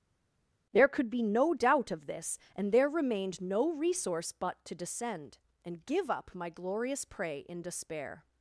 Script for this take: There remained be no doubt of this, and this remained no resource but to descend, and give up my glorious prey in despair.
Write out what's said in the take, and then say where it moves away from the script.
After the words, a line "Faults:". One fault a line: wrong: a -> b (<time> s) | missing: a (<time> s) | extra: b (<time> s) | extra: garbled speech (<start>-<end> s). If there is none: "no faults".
There could be no doubt of this, and there remained no resource but to descend, and give up my glorious prey in despair.
Faults:
wrong: remained -> could (0.9 s)
wrong: this -> there (2.7 s)